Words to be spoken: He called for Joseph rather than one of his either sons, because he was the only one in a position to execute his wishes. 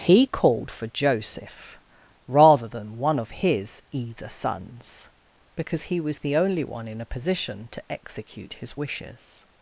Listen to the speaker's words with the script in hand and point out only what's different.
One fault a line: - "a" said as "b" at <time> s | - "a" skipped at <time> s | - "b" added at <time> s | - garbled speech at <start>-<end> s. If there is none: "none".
none